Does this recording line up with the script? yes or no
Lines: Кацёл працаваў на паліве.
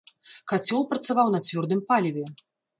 no